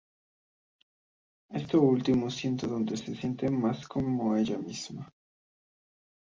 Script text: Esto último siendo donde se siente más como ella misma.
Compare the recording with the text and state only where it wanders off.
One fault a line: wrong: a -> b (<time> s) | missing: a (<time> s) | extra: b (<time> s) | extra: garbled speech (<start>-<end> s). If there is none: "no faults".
no faults